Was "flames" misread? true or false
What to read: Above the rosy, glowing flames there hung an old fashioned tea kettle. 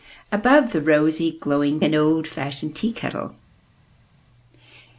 true